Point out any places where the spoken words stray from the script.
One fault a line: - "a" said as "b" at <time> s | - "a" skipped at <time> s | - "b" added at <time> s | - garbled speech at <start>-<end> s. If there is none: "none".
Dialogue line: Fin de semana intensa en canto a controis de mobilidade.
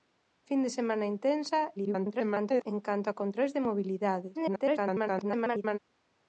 - garbled speech at 1.8-2.7 s
- garbled speech at 4.3-5.8 s